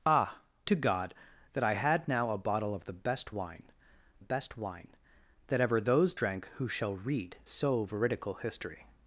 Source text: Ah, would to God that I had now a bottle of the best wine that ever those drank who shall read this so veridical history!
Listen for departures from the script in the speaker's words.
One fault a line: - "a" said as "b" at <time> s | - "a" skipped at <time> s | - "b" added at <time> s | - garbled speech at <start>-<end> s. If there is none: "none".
- "would" skipped at 0.4 s
- "best wine" added at 4.2 s
- "this" skipped at 7.4 s